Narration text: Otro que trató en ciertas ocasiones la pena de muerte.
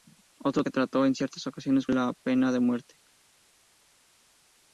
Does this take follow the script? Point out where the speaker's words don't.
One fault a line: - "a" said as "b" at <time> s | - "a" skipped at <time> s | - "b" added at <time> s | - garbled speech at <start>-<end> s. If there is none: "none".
none